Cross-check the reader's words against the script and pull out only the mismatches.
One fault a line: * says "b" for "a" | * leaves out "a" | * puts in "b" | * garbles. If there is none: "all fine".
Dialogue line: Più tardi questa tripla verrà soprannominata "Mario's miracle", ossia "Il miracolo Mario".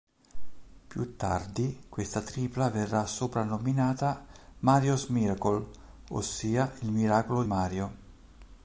all fine